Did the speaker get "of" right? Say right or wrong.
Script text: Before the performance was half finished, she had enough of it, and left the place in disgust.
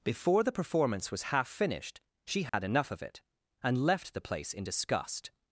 right